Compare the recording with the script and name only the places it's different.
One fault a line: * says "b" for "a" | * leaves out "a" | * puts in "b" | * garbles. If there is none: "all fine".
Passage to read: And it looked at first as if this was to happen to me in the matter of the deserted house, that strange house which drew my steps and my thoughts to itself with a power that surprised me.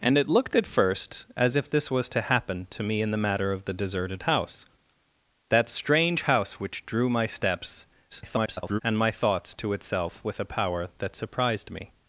* garbles